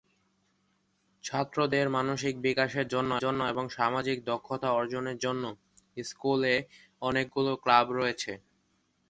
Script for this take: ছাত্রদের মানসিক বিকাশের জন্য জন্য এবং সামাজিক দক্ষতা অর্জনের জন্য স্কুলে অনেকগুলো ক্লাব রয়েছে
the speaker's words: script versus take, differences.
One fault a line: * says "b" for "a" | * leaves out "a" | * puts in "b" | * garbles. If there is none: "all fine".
all fine